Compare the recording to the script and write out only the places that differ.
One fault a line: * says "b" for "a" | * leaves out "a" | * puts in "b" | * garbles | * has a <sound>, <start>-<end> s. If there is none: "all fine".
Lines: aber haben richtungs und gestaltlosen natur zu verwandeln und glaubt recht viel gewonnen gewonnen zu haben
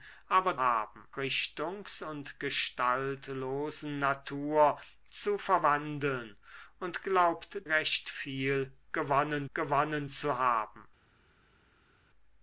all fine